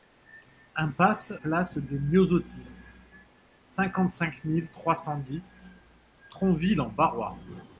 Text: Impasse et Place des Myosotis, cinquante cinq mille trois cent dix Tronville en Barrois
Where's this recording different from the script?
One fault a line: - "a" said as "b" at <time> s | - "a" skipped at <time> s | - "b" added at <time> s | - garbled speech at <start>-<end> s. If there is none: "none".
- "et" skipped at 1.3 s